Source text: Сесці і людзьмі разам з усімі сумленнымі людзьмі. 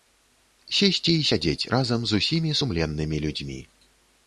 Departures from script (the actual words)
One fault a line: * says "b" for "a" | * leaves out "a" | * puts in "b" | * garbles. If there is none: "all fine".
* says "сядзець" for "людзьмі"